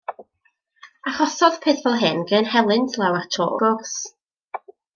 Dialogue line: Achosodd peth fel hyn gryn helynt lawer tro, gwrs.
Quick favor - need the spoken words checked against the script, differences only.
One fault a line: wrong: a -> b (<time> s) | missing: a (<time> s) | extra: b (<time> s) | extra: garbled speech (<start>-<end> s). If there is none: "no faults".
no faults